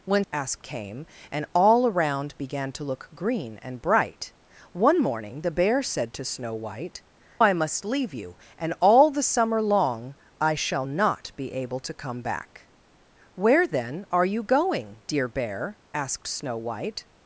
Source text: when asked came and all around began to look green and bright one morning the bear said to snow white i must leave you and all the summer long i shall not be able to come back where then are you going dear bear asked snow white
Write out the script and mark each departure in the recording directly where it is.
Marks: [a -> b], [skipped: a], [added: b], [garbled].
when asked came and all around began to look green and bright one morning the bear said to snow white i must leave you and all the summer long i shall not be able to come back where then are you going dear bear asked snow white